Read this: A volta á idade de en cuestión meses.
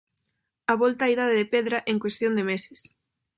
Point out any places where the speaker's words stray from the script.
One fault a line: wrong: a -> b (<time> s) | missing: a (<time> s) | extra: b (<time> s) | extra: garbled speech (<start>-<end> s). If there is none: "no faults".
extra: pedra (1.5 s)
extra: de (2.4 s)